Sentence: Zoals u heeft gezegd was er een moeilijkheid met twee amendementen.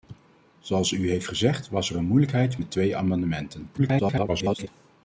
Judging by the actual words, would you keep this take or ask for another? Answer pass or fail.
fail